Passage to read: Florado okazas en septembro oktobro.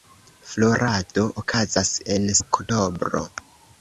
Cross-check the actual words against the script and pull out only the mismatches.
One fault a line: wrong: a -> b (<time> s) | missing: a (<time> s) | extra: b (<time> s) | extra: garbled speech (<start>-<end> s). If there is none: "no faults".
missing: septembro (2.3 s)